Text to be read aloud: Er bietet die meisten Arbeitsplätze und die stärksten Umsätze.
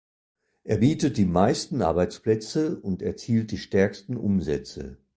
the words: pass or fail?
fail